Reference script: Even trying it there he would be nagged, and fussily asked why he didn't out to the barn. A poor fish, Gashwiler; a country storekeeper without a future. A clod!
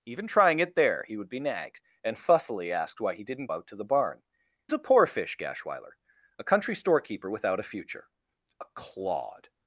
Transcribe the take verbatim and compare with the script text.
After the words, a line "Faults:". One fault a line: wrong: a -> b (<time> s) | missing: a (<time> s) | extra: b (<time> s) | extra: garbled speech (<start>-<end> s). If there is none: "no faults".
Even trying it there he would be nagged, and fussily asked why he didn't out to the barn. A poor fish, Gashwiler; a country storekeeper without a future. A clod!
Faults:
no faults